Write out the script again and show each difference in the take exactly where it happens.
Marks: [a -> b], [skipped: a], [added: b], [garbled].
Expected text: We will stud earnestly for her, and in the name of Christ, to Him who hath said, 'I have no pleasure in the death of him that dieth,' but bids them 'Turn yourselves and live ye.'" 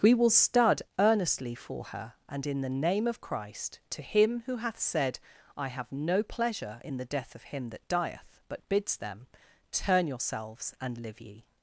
We will stud earnestly for her, and in the name of Christ, to Him who hath said, 'I have no pleasure in the death of him that dieth,' but bids them 'Turn yourselves and live ye.'"